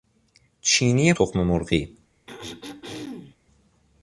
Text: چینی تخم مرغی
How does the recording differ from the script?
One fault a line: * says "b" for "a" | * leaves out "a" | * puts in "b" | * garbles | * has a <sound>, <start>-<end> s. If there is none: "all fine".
* has a throat clearing, 2.3-3.4 s